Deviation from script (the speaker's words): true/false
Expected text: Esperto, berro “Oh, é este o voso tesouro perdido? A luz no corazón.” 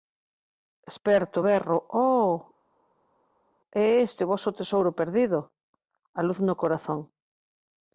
false